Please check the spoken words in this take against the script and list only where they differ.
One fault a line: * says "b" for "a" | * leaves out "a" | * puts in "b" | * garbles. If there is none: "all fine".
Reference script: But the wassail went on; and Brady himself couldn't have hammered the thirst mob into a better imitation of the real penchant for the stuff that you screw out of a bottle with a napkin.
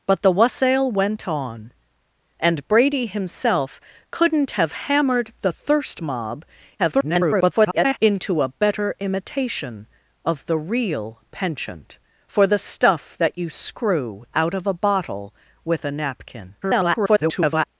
* garbles
* garbles